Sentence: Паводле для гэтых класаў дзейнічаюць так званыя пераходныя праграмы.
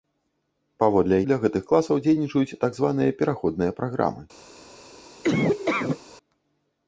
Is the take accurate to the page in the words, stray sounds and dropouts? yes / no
no